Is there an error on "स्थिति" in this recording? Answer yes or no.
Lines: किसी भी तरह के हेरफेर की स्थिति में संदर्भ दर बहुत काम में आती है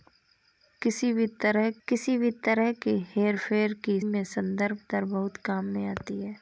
yes